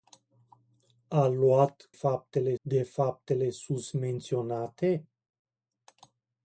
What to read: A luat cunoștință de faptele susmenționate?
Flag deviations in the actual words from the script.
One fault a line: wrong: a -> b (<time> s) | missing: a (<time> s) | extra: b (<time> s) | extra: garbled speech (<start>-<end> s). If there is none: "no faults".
wrong: cunoștință -> faptele (1.9 s)